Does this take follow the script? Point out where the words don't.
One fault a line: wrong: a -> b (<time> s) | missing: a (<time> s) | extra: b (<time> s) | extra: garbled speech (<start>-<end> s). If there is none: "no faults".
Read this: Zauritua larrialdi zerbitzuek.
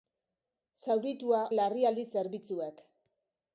no faults